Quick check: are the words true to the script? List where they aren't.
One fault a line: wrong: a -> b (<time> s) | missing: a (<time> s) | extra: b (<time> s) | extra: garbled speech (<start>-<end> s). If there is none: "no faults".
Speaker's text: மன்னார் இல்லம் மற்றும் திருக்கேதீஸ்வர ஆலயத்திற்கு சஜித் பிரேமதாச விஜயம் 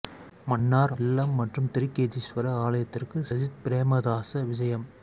no faults